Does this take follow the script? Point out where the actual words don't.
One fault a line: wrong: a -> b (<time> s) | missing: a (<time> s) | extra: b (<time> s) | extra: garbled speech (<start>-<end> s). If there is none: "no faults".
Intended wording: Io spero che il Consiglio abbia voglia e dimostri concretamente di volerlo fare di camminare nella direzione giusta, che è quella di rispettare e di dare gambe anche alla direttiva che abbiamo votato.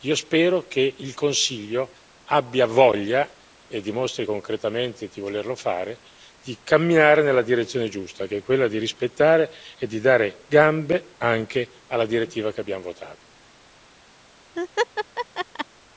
no faults